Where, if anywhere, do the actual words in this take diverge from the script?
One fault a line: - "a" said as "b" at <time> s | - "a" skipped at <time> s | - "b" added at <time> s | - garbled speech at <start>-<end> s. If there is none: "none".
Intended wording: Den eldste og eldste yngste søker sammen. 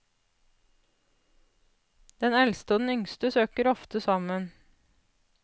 - "eldste" said as "den" at 2.8 s
- "ofte" added at 3.7 s